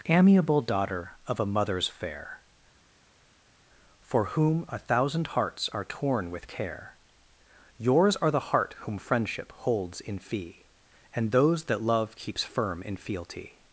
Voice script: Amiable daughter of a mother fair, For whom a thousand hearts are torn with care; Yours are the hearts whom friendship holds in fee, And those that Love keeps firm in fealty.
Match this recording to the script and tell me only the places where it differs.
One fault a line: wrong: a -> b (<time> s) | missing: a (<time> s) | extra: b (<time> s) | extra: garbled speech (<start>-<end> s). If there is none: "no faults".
wrong: mother -> mothers (1.4 s)
wrong: hearts -> heart (8.5 s)